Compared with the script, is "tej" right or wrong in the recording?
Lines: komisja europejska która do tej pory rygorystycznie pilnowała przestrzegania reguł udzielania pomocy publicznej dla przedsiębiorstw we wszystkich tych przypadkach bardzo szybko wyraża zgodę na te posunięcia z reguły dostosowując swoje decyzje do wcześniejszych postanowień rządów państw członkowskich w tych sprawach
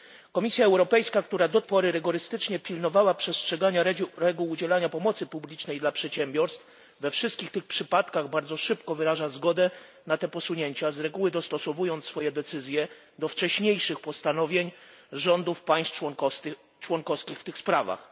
wrong